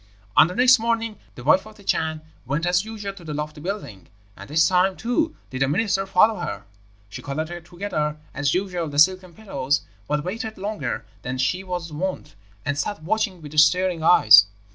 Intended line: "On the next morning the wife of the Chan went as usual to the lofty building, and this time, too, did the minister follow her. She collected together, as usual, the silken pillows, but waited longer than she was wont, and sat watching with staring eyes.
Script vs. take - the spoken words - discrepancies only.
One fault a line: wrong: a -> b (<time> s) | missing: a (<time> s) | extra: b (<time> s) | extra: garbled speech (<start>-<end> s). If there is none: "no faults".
no faults